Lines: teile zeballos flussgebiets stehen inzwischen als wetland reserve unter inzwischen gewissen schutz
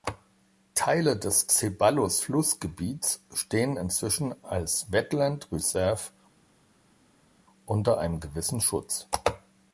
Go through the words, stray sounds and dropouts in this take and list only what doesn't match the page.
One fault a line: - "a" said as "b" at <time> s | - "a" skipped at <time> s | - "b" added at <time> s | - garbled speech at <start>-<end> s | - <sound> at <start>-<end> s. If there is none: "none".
- "des" added at 1.1 s
- "inzwischen" said as "einem" at 8.0 s